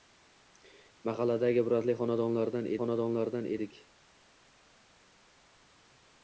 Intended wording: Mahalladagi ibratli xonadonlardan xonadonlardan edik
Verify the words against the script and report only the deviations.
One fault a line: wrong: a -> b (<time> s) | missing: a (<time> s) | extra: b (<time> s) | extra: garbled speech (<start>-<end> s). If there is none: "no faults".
no faults